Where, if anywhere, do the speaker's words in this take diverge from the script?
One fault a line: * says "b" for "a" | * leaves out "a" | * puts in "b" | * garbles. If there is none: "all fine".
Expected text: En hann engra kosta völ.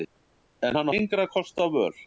all fine